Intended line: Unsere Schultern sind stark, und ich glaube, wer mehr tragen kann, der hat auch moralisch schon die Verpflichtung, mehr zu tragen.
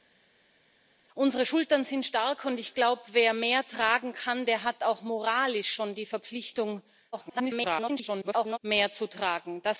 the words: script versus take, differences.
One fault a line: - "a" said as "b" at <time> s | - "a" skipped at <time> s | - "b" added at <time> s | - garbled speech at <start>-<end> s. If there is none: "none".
- garbled speech at 7.1-8.6 s